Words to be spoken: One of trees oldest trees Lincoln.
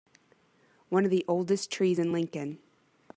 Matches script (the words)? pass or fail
fail